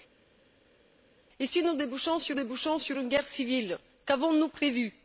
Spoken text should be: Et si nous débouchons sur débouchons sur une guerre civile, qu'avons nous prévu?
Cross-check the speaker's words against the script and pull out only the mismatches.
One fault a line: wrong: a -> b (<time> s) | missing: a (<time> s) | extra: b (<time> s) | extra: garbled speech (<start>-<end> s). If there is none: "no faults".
no faults